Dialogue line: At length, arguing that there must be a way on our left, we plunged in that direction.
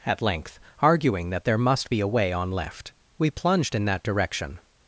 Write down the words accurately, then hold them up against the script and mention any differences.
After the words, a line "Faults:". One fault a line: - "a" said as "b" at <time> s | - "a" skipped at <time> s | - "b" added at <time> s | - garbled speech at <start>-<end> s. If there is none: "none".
At length, arguing that there must be a way on left, we plunged in that direction.
Faults:
- "our" skipped at 2.5 s